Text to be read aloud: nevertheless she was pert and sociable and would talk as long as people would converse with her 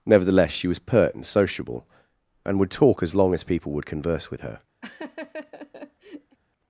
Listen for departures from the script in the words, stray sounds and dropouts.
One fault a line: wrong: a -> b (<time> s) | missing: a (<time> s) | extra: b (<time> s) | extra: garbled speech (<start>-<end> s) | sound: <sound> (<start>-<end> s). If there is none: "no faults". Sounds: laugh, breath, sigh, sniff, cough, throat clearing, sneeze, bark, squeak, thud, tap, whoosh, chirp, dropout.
sound: laugh (4.8-6.4 s)